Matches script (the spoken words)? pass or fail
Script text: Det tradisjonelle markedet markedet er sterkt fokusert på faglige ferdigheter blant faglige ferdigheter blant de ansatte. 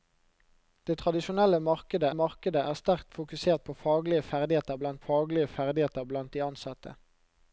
pass